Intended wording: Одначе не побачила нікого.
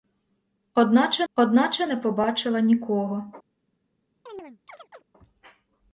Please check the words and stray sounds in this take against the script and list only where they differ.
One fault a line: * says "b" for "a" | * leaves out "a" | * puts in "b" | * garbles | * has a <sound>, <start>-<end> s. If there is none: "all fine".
* puts in "одначе"
* has a chirp, 4.3-5.0 s